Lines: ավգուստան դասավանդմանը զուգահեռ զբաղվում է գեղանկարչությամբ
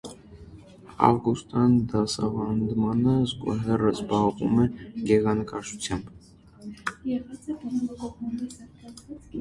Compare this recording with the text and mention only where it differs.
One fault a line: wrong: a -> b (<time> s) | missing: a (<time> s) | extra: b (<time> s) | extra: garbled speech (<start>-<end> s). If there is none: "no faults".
no faults